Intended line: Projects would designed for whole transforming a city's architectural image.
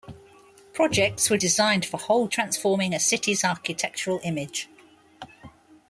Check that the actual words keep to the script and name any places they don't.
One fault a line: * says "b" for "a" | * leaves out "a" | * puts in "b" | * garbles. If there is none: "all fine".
all fine